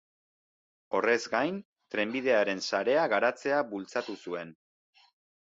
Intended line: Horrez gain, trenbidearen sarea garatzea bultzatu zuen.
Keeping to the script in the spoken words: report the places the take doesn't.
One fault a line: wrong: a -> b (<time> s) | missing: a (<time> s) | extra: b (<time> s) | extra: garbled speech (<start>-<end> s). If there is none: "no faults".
no faults